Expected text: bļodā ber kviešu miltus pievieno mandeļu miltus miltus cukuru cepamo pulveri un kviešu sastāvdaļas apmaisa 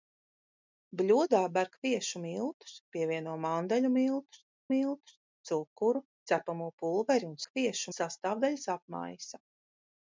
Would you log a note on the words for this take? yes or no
no